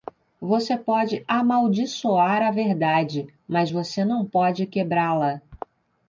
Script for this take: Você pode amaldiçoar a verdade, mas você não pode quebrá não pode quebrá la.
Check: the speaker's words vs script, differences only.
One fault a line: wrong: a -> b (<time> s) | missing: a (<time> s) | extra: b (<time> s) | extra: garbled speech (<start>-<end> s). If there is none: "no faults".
missing: não pode quebrá (5.1 s)